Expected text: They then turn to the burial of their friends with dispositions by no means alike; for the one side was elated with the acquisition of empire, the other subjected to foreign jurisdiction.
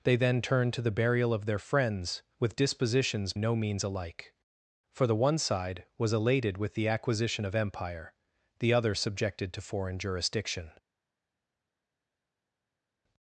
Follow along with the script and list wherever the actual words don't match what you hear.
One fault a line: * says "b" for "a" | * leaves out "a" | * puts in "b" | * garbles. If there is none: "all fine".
* leaves out "by"